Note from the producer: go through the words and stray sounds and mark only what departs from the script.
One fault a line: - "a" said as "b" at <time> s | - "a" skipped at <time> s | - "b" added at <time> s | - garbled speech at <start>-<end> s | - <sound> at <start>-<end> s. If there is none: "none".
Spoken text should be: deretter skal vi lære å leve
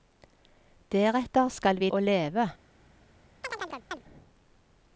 - "lære" skipped at 1.9 s
- chirp at 3.4-4.0 s